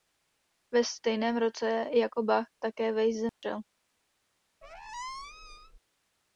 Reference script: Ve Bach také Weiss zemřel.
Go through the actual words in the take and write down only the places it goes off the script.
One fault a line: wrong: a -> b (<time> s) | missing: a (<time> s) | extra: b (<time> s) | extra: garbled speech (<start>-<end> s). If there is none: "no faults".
extra: stejném roce jako (0.8 s)